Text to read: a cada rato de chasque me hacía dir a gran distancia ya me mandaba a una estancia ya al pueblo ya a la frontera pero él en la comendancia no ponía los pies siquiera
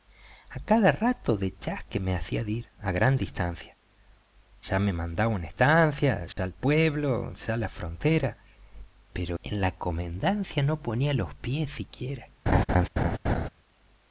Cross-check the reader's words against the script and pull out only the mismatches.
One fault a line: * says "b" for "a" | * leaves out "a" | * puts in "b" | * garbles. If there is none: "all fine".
* leaves out "él"